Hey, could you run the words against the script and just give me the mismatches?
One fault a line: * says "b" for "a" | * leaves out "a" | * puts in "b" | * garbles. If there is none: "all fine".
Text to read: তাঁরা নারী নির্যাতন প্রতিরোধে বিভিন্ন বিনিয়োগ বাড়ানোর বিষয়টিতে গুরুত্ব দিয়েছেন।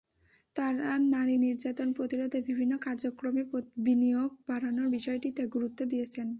* puts in "কার্যক্রমে"